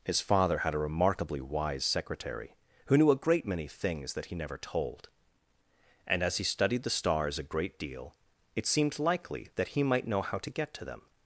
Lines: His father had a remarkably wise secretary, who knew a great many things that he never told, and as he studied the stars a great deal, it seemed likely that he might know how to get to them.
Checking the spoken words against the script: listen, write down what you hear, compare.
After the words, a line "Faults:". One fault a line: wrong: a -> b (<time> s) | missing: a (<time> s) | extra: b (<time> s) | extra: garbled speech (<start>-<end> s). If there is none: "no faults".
His father had a remarkably wise secretary, who knew a great many things that he never told, and as he studied the stars a great deal, it seemed likely that he might know how to get to them.
Faults:
no faults